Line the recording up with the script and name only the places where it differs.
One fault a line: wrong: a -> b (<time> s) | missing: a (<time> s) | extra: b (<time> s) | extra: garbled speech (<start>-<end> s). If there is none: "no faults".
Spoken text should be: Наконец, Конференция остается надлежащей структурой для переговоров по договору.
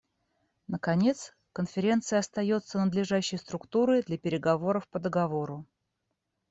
no faults